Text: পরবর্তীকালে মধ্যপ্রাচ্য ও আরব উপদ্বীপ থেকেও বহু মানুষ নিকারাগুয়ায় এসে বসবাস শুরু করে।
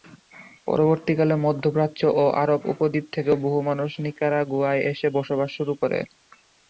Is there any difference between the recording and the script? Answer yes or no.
no